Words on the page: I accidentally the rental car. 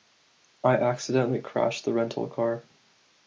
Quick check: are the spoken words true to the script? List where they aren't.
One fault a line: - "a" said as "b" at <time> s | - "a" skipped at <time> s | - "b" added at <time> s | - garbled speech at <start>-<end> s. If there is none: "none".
- "crashed" added at 1.4 s